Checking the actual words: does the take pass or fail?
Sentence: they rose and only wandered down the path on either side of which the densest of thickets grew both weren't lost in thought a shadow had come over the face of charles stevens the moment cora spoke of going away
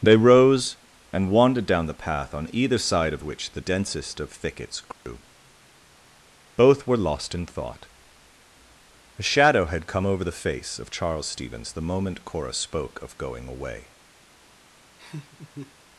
fail